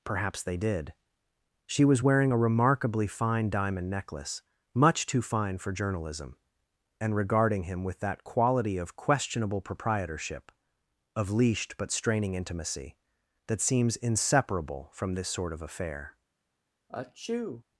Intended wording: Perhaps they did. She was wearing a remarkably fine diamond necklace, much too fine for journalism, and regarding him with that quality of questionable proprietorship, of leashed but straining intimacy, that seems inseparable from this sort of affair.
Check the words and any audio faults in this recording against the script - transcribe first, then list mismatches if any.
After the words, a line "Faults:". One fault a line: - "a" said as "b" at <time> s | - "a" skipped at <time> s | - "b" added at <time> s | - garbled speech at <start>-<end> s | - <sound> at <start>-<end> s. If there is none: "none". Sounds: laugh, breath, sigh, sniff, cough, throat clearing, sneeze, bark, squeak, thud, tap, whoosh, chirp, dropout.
Perhaps they did. She was wearing a remarkably fine diamond necklace, much too fine for journalism, and regarding him with that quality of questionable proprietorship, of leashed but straining intimacy, that seems inseparable from this sort of affair.
Faults:
- sneeze at 16.9-17.6 s